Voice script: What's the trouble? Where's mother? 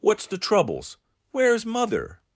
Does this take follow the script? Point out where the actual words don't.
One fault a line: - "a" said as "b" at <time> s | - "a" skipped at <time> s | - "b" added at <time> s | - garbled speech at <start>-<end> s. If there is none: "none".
- "trouble" said as "troubles" at 0.4 s